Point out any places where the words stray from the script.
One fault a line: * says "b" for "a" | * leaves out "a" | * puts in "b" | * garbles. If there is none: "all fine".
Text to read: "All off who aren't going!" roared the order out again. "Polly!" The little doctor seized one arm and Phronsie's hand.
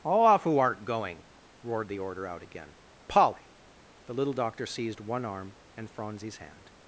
all fine